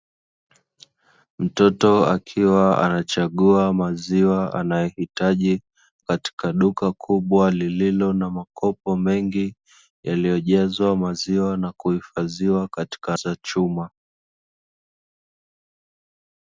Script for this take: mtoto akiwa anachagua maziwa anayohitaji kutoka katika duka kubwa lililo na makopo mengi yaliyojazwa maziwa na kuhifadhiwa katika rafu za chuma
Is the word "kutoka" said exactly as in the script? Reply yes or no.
no